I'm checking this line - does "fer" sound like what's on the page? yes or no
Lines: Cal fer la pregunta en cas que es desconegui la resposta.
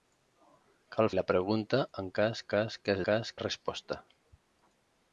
no